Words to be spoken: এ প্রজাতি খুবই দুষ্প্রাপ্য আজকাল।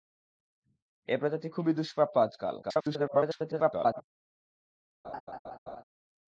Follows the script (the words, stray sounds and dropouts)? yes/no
no